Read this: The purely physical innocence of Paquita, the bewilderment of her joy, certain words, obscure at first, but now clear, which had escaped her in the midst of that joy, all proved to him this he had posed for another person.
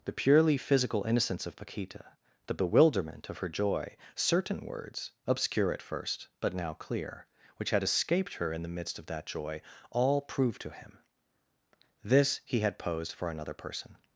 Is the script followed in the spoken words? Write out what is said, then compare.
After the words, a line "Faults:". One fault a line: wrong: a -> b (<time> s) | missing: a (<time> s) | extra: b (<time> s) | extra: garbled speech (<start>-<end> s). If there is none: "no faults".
The purely physical innocence of Paquita, the bewilderment of her joy, certain words, obscure at first, but now clear, which had escaped her in the midst of that joy, all proved to him this he had posed for another person.
Faults:
no faults